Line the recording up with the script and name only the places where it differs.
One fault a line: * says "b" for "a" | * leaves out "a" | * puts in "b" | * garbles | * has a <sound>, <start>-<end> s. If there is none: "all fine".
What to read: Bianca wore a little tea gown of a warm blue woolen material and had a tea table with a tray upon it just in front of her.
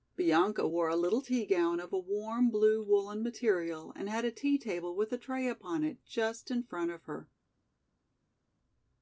all fine